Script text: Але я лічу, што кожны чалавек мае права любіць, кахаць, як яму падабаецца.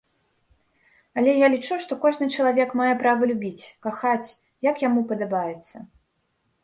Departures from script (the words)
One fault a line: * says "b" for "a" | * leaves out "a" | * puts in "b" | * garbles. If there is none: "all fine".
all fine